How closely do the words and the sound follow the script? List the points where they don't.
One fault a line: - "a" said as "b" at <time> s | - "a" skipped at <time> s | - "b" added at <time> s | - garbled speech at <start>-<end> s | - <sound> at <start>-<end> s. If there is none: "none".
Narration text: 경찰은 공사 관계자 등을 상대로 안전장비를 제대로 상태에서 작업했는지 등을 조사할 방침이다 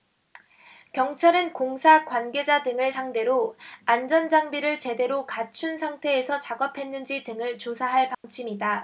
- "갖춘" added at 5.3 s
- dropout at 8.1-8.2 s